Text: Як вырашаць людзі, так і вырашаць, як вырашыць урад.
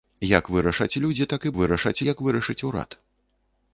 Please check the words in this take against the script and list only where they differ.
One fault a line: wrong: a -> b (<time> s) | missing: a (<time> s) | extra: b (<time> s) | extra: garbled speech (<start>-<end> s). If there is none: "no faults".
no faults